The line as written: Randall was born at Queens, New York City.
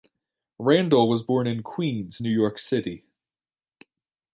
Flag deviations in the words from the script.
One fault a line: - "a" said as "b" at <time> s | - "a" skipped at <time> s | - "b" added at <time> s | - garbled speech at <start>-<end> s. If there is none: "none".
- "at" said as "in" at 1.4 s